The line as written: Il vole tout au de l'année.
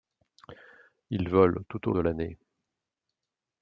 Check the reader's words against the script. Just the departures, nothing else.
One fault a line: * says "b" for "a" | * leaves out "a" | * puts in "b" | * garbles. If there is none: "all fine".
all fine